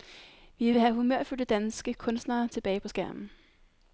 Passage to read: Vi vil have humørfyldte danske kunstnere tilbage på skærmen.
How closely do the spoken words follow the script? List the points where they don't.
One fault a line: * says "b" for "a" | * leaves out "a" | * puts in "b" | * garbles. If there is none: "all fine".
all fine